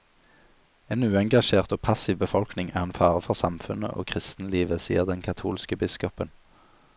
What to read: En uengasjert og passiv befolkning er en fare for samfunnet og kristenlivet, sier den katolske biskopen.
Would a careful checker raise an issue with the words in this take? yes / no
no